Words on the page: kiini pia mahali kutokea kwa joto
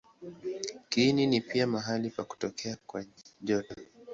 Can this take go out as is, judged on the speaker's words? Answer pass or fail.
fail